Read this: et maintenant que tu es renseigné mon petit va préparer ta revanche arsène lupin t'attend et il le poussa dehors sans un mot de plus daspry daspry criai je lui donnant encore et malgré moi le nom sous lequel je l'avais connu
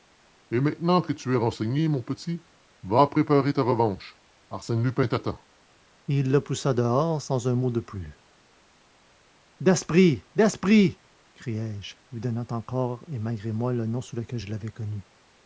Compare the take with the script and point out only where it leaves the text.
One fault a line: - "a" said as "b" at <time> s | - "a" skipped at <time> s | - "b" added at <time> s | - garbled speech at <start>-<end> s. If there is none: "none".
none